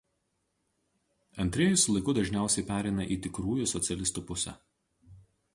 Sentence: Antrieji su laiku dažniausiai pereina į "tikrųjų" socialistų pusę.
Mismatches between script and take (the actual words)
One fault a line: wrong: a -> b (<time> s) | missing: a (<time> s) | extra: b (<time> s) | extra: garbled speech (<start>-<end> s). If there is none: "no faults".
no faults